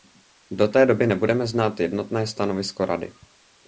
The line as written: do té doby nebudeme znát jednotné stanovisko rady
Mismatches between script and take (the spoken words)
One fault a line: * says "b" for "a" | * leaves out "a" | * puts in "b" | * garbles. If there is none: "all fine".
all fine